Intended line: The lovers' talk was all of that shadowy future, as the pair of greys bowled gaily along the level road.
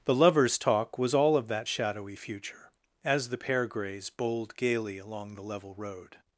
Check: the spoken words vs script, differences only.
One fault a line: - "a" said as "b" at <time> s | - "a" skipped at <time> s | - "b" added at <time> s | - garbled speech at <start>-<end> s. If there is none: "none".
- "of" skipped at 3.7 s